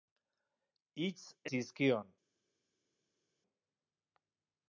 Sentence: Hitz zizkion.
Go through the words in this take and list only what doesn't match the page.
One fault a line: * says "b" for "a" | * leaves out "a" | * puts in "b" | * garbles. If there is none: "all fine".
all fine